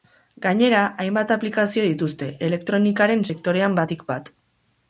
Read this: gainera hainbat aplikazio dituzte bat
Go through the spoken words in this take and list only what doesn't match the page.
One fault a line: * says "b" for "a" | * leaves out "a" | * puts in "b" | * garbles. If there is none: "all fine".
* puts in "elektronikaren sektorean batik"